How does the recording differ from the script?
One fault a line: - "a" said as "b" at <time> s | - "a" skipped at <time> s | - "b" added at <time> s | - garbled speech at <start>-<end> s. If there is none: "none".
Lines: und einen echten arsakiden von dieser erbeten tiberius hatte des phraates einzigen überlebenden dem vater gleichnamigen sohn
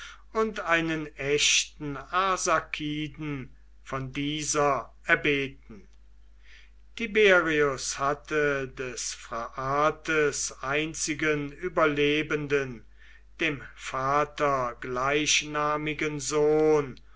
none